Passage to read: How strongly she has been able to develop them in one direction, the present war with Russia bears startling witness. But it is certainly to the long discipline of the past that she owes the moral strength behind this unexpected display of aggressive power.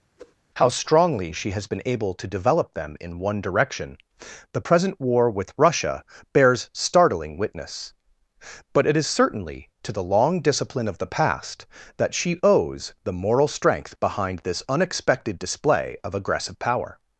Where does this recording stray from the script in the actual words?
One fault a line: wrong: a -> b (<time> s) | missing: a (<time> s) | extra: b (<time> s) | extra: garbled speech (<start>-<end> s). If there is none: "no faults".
no faults